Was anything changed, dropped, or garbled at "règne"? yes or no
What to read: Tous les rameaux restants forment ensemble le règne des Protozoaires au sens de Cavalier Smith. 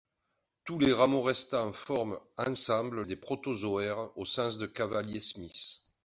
yes